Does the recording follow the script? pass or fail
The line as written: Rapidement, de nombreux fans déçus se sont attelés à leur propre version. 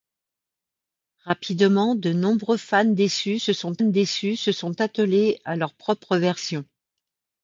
fail